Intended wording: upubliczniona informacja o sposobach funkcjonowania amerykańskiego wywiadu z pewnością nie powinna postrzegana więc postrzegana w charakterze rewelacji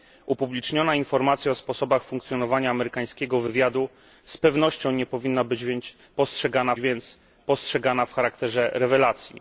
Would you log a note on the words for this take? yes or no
no